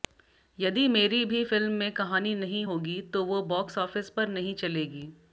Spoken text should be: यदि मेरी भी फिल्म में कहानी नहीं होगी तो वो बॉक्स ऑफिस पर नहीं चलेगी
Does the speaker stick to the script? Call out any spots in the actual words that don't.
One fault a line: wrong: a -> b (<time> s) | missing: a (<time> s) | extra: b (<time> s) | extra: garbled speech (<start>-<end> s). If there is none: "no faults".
no faults